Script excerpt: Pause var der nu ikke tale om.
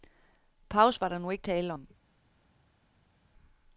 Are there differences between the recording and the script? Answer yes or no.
no